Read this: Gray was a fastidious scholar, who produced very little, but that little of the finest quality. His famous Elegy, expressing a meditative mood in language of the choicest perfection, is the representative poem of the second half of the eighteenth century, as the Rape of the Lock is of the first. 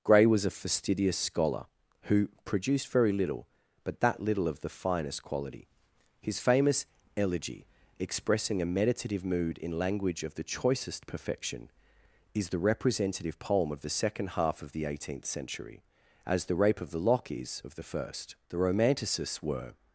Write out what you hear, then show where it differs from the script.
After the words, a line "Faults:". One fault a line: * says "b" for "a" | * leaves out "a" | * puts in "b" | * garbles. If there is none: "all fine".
Gray was a fastidious scholar, who produced very little, but that little of the finest quality. His famous Elegy, expressing a meditative mood in language of the choicest perfection, is the representative poem of the second half of the eighteenth century, as the Rape of the Lock is of the first. The romanticists were
Faults:
* puts in "The romanticists were"